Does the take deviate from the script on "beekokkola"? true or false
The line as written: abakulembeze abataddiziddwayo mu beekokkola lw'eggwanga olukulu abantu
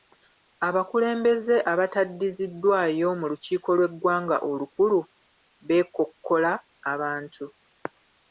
true